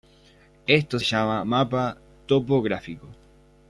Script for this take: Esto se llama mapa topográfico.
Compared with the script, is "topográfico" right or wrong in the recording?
right